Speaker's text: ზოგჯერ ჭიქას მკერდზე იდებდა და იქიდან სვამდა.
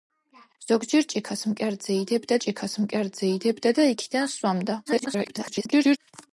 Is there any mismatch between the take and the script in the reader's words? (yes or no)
yes